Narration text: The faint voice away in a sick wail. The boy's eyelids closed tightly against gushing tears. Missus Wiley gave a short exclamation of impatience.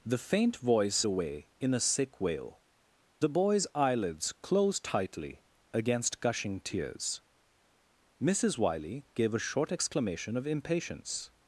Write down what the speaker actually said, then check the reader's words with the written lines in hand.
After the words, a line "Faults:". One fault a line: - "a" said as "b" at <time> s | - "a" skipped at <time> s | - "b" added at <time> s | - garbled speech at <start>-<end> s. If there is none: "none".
The faint voice away in a sick wail. The boy's eyelids closed tightly against gushing tears. Missus Wiley gave a short exclamation of impatience.
Faults:
none